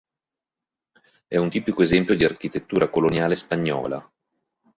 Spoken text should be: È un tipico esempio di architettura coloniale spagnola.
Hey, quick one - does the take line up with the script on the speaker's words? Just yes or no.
yes